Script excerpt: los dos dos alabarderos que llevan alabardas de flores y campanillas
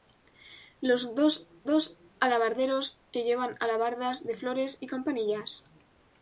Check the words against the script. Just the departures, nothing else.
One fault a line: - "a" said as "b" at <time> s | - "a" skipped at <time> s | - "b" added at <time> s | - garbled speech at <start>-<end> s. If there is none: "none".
none